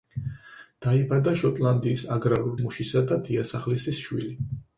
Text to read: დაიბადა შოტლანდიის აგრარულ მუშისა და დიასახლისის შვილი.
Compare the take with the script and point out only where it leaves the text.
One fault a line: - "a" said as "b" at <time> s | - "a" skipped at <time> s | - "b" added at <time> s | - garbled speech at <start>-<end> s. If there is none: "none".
none